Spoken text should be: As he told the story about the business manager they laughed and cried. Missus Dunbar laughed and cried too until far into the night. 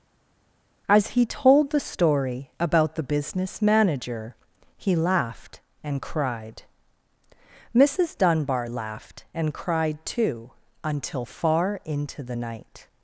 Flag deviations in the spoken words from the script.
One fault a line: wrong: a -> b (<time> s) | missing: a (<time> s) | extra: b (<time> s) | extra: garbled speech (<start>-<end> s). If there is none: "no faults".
wrong: they -> he (4.8 s)